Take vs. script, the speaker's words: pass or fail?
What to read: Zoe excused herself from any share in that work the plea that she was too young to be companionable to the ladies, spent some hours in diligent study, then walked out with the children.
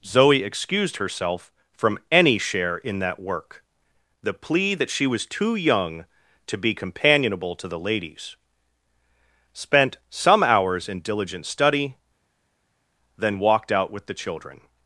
pass